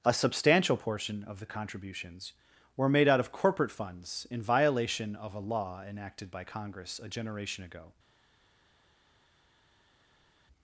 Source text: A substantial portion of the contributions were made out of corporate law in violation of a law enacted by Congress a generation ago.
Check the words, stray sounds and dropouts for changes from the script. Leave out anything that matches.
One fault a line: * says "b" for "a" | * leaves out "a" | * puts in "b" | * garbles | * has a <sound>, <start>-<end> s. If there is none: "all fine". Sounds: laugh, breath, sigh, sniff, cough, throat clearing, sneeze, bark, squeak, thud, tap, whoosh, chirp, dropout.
* says "funds" for "law"